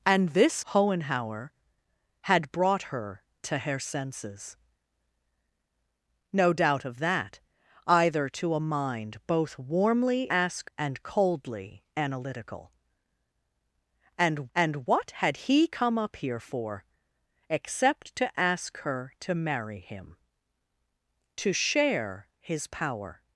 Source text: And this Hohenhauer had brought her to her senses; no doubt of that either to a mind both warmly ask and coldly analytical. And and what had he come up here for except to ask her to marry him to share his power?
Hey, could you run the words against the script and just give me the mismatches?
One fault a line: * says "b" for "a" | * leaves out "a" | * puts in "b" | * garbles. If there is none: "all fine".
all fine